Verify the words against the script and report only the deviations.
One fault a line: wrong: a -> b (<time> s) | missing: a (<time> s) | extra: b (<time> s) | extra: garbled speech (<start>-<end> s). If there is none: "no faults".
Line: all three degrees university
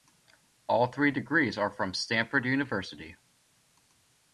extra: are from stanford (1.6 s)